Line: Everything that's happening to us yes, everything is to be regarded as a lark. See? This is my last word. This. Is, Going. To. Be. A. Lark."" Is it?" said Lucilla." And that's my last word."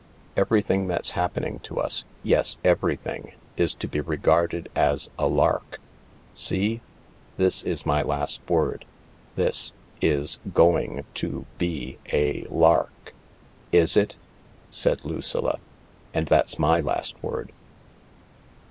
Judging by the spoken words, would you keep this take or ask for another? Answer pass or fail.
pass